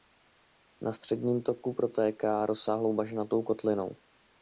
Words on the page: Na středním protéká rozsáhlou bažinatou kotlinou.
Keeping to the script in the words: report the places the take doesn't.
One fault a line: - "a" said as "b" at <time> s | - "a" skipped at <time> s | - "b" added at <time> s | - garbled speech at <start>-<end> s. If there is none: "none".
- "toku" added at 1.4 s